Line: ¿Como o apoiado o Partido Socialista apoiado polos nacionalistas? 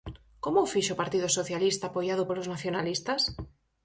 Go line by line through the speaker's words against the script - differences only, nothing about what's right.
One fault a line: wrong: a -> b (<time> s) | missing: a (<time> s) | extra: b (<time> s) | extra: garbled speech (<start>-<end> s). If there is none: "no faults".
wrong: apoiado -> fixo (0.7 s)